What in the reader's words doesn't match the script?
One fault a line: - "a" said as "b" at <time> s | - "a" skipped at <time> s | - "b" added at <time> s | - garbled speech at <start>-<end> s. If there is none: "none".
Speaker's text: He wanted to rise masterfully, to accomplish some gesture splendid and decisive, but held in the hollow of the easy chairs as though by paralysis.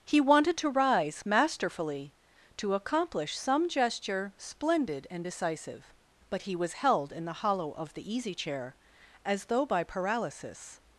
- "he was" added at 6.4 s
- "chairs" said as "chair" at 8.3 s